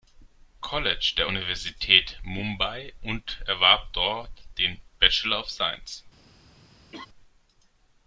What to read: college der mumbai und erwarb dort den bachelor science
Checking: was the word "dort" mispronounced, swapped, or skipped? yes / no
no